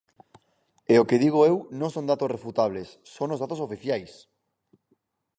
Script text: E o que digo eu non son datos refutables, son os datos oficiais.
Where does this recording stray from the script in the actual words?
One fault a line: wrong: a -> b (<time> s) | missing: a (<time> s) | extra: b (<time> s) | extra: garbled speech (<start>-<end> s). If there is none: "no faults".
no faults